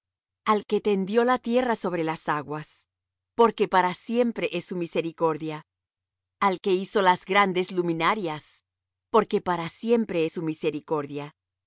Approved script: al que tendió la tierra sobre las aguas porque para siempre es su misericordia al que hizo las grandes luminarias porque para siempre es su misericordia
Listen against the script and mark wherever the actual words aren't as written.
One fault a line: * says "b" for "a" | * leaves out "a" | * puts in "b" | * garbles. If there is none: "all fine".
all fine